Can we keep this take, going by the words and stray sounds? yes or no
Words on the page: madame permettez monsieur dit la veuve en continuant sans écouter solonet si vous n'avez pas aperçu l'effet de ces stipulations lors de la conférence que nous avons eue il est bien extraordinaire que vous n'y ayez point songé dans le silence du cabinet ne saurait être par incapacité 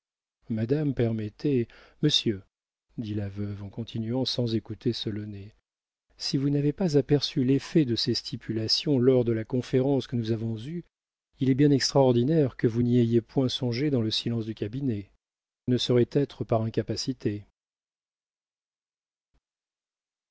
yes